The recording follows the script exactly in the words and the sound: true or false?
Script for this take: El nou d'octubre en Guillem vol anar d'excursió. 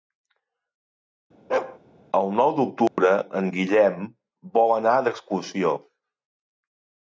false